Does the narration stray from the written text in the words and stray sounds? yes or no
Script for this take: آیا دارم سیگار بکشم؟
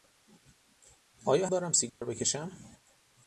yes